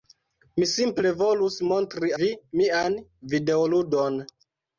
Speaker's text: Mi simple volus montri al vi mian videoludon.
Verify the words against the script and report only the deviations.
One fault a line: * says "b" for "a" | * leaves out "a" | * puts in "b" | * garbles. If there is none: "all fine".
* leaves out "al"